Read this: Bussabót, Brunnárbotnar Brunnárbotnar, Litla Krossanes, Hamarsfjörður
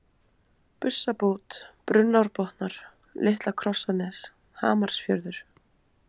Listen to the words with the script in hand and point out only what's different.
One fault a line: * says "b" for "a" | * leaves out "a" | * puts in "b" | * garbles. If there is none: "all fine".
* leaves out "Brunnárbotnar"